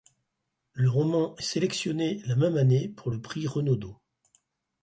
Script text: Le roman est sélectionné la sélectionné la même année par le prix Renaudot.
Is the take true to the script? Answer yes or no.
no